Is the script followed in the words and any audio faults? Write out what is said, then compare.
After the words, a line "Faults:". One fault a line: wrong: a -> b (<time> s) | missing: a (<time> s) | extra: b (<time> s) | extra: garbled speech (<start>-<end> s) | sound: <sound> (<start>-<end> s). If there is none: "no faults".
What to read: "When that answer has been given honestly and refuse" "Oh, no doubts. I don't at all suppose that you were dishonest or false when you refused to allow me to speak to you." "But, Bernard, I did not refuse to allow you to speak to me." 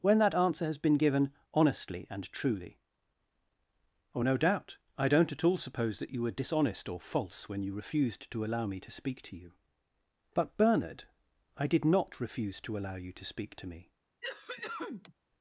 "When that answer has been given honestly and truly" "Oh, no doubt. I don't at all suppose that you were dishonest or false when you refused to allow me to speak to you." "But, Bernard, I did not refuse to allow you to speak to me."
Faults:
wrong: refuse -> truly (2.3 s)
wrong: doubts -> doubt (4.4 s)
sound: cough (14.2-15.1 s)